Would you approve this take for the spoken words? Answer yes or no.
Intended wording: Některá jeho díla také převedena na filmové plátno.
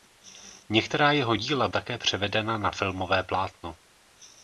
yes